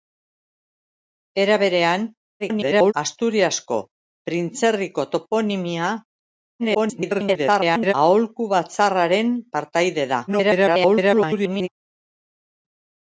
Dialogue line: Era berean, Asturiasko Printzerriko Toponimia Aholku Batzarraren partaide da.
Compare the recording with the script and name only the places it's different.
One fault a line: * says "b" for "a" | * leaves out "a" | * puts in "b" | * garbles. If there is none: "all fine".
* garbles
* garbles
* garbles